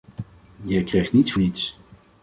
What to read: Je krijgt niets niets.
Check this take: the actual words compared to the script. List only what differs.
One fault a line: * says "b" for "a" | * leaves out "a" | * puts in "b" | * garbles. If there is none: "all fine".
all fine